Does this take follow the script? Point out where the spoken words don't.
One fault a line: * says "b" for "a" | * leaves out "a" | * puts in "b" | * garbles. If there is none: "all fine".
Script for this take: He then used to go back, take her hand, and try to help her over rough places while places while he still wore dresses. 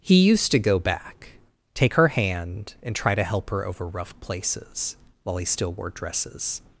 * leaves out "then"
* leaves out "places while"